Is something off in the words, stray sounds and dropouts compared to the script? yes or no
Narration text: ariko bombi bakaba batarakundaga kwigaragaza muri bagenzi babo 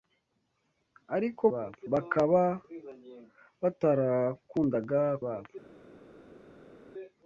yes